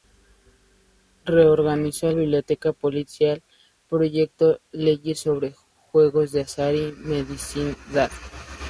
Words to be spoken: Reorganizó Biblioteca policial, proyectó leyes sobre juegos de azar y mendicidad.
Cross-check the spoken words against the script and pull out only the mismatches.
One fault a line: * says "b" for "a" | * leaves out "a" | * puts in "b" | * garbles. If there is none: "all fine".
all fine